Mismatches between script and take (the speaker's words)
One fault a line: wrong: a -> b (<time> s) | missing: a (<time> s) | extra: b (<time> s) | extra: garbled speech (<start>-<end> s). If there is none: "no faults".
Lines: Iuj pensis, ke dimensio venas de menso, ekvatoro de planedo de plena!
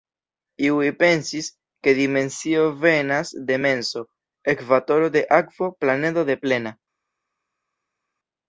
extra: akvo (5.4 s)